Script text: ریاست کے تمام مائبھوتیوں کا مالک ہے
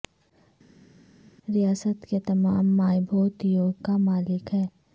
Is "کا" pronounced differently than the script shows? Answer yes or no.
no